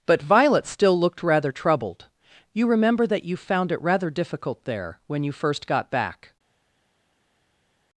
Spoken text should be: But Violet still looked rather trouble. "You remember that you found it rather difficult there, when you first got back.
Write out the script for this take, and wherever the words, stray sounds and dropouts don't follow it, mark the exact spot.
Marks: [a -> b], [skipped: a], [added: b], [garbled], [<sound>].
But Violet still looked rather [trouble. -> troubled] "You remember that you found it rather difficult there, when you first got back.